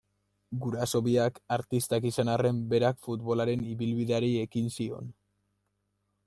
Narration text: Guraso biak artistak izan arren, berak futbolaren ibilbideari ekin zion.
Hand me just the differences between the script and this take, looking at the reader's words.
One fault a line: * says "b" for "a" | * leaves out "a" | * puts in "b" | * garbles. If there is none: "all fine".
all fine